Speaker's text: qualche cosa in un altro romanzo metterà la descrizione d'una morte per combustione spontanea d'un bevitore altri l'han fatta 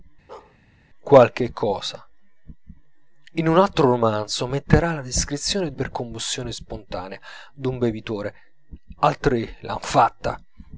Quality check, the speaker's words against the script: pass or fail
fail